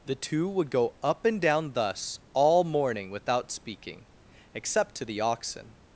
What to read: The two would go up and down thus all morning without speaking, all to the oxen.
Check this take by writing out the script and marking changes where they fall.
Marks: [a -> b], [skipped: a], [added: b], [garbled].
The two would go up and down thus all morning without speaking, [all -> except] to the oxen.